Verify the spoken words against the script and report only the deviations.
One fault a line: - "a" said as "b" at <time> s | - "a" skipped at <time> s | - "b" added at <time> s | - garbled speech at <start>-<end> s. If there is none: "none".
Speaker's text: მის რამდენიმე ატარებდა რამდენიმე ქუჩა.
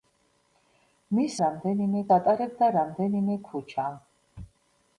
none